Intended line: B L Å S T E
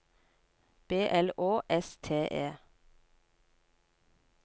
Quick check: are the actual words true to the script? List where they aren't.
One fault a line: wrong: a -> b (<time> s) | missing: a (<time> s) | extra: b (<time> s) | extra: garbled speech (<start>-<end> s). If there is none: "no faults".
no faults